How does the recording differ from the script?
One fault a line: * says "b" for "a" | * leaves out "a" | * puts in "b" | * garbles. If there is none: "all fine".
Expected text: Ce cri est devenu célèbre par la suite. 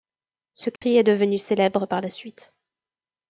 all fine